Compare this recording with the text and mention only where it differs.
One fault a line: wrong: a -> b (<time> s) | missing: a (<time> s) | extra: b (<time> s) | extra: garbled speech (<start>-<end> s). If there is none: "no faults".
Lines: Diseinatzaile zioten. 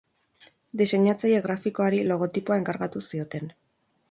extra: grafikoari logotipoa enkargatu (1.5 s)